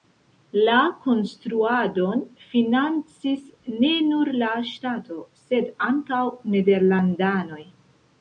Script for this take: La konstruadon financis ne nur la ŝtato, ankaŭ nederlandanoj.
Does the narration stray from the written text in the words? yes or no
yes